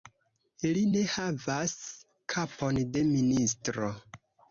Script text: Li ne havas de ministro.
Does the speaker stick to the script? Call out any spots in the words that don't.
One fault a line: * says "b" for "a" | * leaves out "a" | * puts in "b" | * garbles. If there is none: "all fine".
* puts in "kapon"